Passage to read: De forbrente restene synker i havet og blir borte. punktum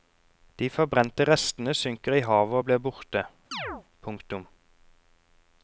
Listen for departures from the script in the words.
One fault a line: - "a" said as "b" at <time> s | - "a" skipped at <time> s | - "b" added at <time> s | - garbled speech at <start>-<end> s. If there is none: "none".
none